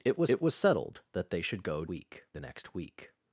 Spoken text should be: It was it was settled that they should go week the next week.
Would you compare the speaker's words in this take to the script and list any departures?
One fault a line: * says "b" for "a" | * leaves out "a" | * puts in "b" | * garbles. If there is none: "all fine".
all fine